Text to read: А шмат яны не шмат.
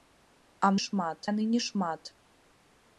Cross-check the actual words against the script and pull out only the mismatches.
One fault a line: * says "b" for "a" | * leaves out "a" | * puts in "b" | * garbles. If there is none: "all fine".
all fine